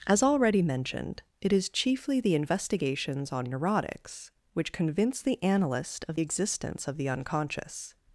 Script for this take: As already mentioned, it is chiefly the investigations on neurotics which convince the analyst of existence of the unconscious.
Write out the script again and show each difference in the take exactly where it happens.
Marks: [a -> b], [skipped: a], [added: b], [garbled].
As already mentioned, it is chiefly the investigations on neurotics which convince the analyst of existence of the unconscious.